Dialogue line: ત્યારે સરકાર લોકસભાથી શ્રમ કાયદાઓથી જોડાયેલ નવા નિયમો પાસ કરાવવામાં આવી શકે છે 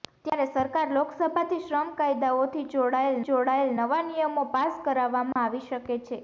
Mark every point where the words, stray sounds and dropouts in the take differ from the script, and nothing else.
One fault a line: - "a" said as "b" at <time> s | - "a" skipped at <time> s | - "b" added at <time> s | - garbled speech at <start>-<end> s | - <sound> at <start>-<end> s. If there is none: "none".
- "જોડાયેલ" added at 3.2 s
- dropout at 5.3-5.4 s